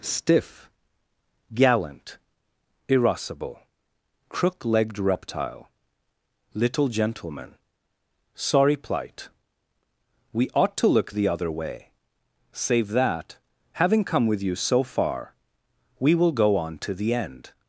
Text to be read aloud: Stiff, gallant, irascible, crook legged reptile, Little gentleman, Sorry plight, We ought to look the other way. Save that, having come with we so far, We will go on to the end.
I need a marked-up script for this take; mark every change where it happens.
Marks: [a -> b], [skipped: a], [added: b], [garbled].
Stiff, gallant, irascible, crook legged reptile, Little gentleman, Sorry plight, We ought to look the other way. Save that, having come with [we -> you] so far, We will go on to the end.